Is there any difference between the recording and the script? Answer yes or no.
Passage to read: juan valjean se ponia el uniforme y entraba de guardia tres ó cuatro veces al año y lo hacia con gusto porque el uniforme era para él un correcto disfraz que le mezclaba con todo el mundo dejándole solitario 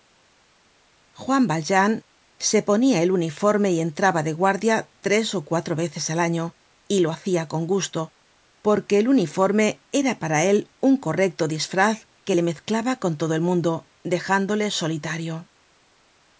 no